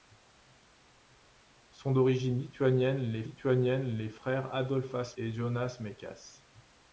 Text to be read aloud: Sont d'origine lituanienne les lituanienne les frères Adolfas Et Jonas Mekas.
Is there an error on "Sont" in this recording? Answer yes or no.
no